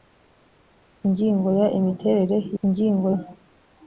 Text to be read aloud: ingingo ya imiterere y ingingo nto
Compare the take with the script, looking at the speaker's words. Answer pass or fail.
pass